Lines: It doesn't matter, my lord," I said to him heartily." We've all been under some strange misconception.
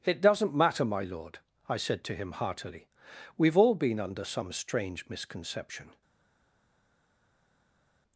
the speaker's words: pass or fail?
pass